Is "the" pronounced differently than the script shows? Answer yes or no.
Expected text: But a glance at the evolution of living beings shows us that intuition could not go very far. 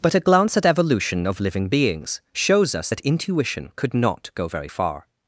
yes